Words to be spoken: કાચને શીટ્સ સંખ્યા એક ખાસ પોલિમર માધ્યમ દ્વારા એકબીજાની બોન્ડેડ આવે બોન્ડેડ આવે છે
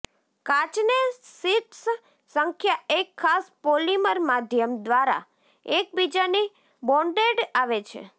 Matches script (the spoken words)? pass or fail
fail